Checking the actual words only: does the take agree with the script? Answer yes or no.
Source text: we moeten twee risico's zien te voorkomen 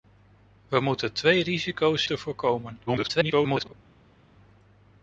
no